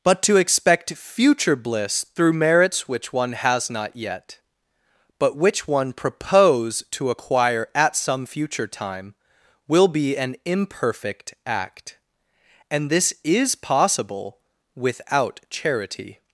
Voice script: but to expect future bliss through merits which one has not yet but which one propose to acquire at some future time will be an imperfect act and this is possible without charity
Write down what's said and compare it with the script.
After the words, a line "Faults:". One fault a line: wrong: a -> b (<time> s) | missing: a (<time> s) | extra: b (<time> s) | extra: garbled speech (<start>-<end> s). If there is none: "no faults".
but to expect future bliss through merits which one has not yet but which one propose to acquire at some future time will be an imperfect act and this is possible without charity
Faults:
no faults